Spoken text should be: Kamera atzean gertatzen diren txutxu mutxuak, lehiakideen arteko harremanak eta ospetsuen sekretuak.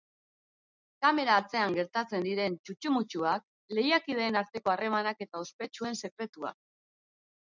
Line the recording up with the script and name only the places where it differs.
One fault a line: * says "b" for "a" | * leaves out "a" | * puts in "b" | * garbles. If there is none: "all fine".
all fine